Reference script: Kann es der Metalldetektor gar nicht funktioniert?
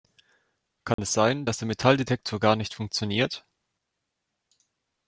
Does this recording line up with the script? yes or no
no